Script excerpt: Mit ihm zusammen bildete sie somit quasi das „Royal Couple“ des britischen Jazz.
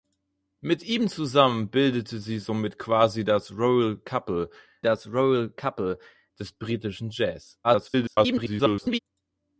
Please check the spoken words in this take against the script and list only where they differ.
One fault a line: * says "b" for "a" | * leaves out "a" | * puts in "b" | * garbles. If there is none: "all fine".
* puts in "das Royal Couple"
* garbles